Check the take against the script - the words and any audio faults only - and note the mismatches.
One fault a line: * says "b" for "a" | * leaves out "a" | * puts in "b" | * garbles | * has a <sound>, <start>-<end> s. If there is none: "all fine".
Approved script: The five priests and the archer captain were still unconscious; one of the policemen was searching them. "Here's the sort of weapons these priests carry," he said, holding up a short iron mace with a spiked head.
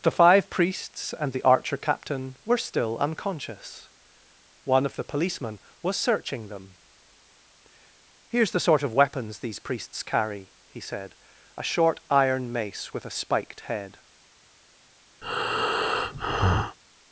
* leaves out "holding up"
* has a breath, 15.2-16.8 s